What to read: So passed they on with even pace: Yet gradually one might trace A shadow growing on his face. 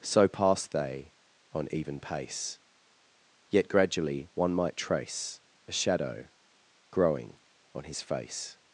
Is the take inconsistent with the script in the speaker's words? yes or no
yes